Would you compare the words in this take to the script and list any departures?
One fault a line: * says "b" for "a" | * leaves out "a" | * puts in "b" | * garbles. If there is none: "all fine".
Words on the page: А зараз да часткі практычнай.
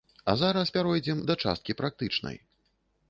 * puts in "пяройдзем"